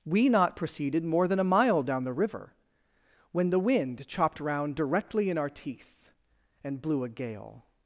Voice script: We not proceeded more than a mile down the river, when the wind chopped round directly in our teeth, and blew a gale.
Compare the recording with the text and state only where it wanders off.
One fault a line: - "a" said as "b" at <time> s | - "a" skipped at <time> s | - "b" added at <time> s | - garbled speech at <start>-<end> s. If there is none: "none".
none